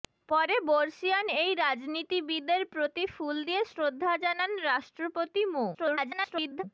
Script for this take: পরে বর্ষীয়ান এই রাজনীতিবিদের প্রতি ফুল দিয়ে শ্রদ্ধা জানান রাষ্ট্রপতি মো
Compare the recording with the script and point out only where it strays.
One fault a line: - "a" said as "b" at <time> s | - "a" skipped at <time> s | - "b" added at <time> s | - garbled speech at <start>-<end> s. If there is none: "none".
- garbled speech at 5.7-6.6 s